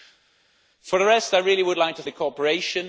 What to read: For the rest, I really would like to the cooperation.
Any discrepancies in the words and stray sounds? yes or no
no